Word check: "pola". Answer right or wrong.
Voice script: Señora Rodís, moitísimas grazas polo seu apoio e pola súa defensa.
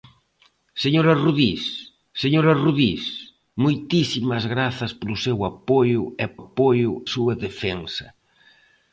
wrong